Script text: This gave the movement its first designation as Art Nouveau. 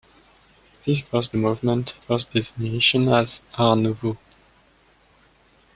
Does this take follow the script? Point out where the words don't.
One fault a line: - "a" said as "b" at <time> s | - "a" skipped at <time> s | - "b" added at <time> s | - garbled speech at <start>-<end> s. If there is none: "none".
- "gave" said as "first" at 1.0 s
- "its" skipped at 1.9 s